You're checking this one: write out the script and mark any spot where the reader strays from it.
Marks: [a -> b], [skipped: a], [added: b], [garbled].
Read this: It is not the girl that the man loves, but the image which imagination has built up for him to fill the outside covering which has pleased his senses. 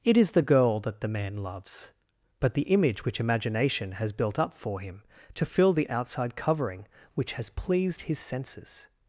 It is [skipped: not] the girl that the man loves, but the image which imagination has built up for him to fill the outside covering which has pleased his senses.